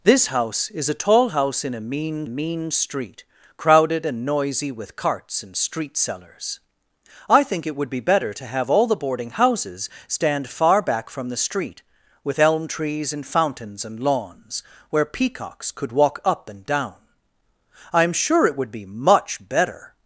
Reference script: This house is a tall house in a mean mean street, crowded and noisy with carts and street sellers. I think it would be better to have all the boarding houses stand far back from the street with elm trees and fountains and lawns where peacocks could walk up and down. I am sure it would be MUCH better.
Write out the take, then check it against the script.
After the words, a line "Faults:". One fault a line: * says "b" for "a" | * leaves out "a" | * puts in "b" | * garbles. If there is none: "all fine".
This house is a tall house in a mean mean street, crowded and noisy with carts and street sellers. I think it would be better to have all the boarding houses stand far back from the street with elm trees and fountains and lawns where peacocks could walk up and down. I am sure it would be MUCH better.
Faults:
all fine